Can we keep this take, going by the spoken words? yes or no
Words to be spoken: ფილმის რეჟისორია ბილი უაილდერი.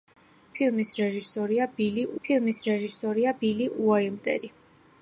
no